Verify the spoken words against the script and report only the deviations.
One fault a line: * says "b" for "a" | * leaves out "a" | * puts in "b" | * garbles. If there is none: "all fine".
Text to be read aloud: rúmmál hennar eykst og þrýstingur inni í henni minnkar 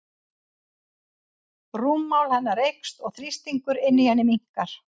all fine